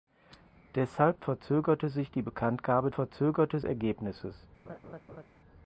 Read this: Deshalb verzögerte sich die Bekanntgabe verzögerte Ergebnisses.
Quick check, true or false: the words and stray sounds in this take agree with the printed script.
false